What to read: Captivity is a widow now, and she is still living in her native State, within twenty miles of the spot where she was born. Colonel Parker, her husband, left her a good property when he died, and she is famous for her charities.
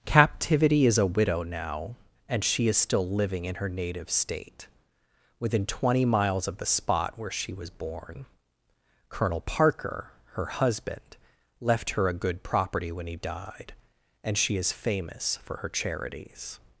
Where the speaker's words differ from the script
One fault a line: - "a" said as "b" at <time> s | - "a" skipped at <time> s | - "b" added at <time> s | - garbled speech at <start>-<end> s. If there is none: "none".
none